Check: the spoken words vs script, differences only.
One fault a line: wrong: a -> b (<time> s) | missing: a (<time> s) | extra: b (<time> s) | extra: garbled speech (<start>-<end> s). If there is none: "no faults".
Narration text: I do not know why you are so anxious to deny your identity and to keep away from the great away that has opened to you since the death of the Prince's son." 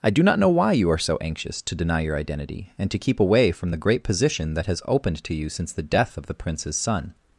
wrong: away -> position (4.0 s)